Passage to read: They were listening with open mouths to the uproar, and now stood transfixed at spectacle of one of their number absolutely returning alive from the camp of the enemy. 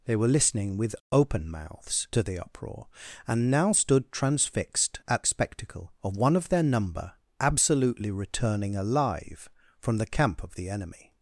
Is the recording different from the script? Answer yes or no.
no